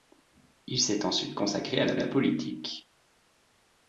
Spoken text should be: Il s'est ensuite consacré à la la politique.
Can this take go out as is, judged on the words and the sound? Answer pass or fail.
pass